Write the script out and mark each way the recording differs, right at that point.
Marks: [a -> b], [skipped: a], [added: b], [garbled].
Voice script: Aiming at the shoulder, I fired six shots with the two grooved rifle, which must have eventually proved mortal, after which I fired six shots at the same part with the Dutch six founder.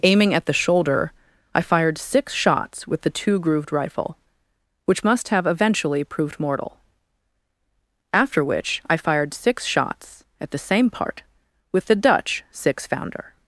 Aiming at the shoulder, I fired six shots with the two grooved rifle, which must have eventually proved mortal, after which I fired six shots at the same part with the Dutch six founder.